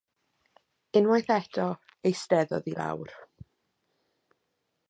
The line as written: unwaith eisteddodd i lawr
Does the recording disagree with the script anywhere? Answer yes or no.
yes